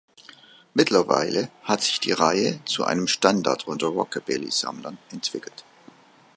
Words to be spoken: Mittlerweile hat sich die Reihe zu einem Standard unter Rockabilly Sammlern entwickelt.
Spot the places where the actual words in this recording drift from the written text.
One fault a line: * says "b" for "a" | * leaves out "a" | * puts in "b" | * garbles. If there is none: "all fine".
all fine